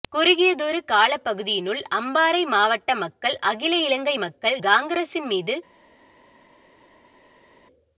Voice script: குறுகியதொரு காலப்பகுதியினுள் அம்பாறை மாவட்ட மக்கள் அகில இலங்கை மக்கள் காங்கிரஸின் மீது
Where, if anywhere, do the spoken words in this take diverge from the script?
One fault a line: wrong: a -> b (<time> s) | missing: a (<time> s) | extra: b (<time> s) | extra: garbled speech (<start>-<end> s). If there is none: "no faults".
no faults